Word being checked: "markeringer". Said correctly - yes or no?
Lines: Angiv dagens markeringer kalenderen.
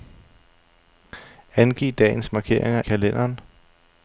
yes